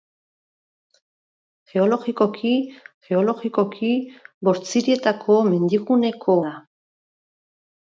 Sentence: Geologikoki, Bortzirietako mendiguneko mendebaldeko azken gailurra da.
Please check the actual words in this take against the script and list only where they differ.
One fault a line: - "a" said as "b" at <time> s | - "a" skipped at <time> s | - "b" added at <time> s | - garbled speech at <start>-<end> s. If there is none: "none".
- "geologikoki" added at 3.1 s
- "mendebaldeko azken gailurra" skipped at 6.4 s